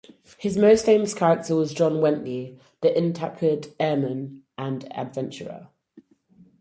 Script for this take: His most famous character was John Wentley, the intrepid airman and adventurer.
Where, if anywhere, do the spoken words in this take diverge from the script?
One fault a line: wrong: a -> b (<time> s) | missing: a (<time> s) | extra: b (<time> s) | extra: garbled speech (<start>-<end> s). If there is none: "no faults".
no faults